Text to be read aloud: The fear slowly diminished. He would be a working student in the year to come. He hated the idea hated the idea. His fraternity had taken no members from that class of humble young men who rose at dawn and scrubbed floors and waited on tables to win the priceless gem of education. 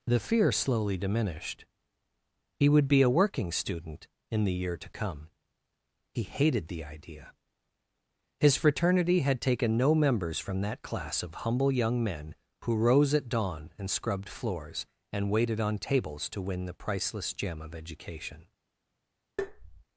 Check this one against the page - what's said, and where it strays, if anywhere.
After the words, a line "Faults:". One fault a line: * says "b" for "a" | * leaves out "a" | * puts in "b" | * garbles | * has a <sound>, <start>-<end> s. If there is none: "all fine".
The fear slowly diminished. He would be a working student in the year to come. He hated the idea. His fraternity had taken no members from that class of humble young men who rose at dawn and scrubbed floors and waited on tables to win the priceless gem of education.
Faults:
* leaves out "hated the idea"
* has a tap, 19.4-19.8 s